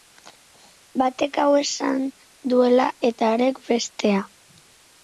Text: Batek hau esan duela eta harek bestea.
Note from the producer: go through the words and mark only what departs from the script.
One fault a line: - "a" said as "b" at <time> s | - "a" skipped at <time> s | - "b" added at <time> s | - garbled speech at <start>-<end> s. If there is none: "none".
none